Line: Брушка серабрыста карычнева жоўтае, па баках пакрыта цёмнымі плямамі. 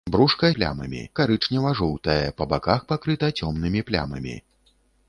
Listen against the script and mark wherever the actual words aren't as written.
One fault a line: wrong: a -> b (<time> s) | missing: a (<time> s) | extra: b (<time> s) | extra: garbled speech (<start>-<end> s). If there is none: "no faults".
wrong: серабрыста -> плямамі (0.6 s)